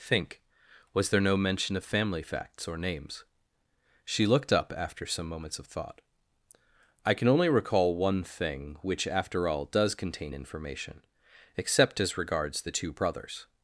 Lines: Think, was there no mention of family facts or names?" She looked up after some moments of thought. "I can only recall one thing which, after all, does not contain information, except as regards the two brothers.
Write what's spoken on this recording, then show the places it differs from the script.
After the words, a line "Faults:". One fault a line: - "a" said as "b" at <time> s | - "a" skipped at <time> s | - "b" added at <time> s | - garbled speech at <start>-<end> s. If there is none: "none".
Think, was there no mention of family facts or names?" She looked up after some moments of thought. "I can only recall one thing which, after all, does contain information, except as regards the two brothers.
Faults:
- "not" skipped at 9.9 s